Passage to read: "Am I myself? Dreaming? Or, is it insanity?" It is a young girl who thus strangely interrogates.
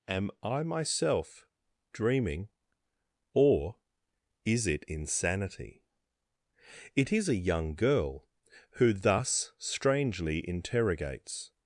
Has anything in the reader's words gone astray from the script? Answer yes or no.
no